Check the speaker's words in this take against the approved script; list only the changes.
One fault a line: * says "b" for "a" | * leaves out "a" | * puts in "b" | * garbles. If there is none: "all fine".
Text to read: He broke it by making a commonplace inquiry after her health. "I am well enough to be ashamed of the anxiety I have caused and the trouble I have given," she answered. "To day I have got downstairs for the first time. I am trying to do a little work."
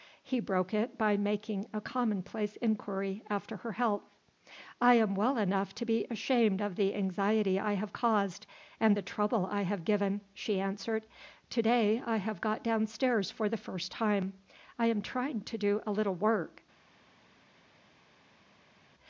all fine